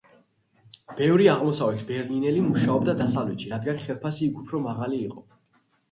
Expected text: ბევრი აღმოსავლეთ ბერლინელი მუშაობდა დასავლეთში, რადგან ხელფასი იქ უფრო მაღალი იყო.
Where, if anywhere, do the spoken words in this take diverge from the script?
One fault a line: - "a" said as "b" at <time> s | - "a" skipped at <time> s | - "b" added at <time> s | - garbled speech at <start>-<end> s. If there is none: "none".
none